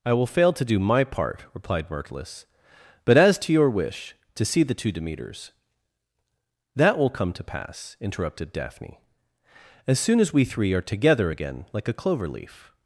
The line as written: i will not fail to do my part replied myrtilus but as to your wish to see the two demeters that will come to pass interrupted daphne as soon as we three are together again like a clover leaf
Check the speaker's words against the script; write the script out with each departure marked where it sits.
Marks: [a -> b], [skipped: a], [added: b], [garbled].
i will [skipped: not] fail to do my part replied myrtilus but as to your wish to see the two demeters that will come to pass interrupted daphne as soon as we three are together again like a clover leaf